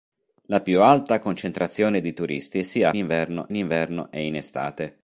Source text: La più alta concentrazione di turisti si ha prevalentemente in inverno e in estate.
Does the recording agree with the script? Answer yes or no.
no